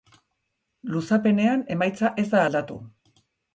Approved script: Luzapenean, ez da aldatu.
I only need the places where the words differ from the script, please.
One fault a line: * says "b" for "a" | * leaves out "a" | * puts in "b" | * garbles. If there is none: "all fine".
* puts in "emaitza"